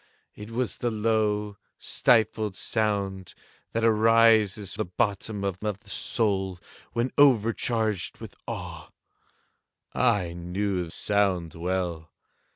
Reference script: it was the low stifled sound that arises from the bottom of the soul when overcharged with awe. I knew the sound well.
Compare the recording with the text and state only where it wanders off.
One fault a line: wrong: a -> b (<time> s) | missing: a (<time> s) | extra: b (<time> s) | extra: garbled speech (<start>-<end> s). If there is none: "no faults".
missing: from (4.7 s)
extra: of (5.6 s)
missing: the (10.9 s)